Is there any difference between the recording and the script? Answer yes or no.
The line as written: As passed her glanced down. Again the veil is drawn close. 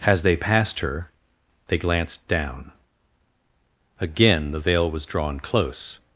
yes